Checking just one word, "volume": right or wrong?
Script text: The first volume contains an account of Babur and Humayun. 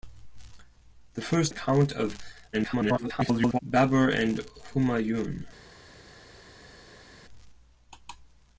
wrong